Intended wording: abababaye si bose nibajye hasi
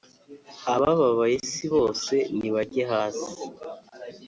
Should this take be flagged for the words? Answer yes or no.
no